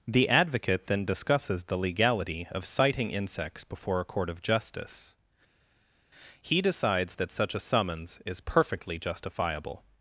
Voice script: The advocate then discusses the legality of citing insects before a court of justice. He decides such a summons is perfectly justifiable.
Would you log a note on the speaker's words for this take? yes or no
yes